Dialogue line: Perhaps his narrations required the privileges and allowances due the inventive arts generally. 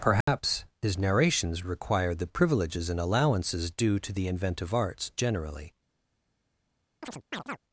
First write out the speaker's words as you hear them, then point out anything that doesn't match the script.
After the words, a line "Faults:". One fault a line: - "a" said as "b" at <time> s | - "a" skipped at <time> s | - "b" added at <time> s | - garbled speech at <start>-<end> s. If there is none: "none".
Perhaps his narrations required the privileges and allowances due to the inventive arts generally.
Faults:
- "to" added at 4.0 s